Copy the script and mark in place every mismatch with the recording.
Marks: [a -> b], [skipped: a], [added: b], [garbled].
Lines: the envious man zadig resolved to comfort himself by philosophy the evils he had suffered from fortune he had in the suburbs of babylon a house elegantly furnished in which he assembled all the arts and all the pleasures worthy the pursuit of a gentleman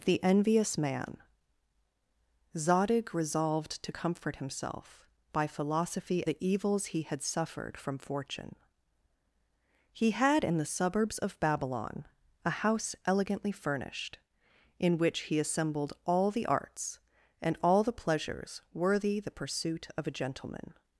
the envious man zadig resolved to comfort himself by philosophy the evils he had suffered from fortune he had in the suburbs of babylon a house elegantly furnished in which he assembled all the arts and all the pleasures worthy the pursuit of a gentleman